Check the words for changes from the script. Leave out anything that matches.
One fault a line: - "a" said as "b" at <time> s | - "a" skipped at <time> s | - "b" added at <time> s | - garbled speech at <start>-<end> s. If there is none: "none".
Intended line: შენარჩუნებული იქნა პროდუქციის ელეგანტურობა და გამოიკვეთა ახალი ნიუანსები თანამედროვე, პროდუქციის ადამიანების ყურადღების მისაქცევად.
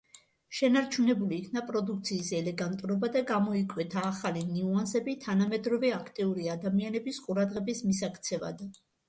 - "პროდუქციის" said as "აქტიური" at 6.0 s